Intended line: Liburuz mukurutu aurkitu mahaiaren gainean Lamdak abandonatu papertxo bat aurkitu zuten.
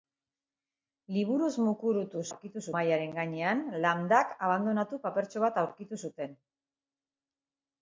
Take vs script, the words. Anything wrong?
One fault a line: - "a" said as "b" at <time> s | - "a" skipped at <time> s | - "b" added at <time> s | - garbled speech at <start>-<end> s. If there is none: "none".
none